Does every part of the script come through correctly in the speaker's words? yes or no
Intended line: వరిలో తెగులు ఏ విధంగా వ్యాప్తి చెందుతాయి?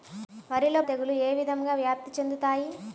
yes